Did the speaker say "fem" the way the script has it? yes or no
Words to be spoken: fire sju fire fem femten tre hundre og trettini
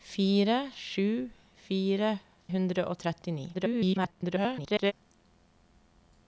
no